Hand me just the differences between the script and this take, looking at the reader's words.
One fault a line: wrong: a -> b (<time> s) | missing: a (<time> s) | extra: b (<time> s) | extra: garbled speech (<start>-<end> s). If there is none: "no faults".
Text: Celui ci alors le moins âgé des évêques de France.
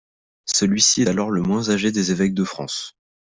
no faults